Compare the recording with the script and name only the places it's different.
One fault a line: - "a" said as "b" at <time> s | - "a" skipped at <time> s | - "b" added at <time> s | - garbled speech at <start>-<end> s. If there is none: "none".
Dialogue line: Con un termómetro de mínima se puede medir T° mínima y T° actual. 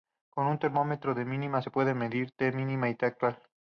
none